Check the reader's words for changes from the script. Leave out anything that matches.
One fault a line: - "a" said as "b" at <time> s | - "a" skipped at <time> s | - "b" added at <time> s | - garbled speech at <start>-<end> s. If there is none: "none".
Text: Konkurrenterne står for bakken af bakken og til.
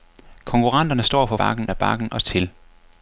none